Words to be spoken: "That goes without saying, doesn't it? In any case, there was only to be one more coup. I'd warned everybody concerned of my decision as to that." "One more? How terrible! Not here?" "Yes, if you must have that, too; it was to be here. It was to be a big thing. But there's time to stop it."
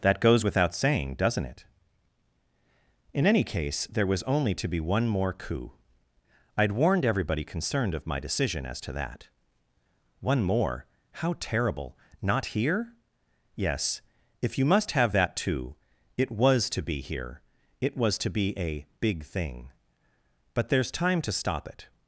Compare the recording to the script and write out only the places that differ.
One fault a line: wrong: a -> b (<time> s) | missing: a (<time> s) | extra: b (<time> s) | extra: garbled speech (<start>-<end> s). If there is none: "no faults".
no faults